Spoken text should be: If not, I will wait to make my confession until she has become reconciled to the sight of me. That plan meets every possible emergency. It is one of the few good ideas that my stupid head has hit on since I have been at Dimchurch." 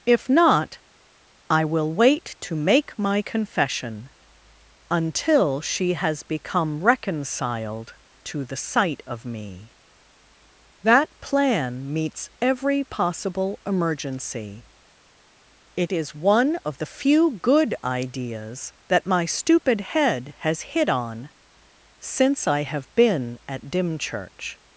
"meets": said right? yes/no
yes